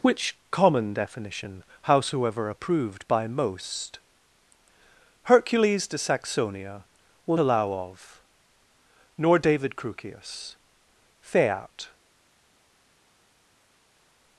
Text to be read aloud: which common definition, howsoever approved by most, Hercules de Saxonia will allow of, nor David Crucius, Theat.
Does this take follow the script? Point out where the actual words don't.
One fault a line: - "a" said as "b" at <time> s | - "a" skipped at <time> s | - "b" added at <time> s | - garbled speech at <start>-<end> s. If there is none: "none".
none